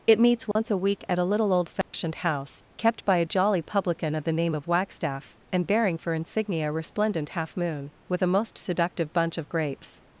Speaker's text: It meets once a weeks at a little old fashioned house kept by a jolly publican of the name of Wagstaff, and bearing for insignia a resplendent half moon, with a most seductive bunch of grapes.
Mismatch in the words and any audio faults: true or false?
true